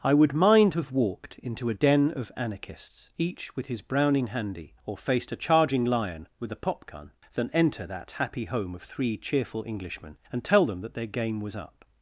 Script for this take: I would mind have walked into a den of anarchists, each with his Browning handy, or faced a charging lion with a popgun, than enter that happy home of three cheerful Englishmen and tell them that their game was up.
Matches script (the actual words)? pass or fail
pass